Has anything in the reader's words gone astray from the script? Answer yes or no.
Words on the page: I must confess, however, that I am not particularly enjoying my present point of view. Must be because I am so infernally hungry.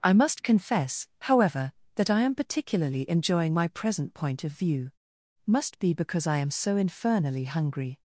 yes